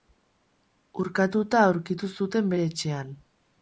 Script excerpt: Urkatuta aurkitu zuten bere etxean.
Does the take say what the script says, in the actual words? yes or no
yes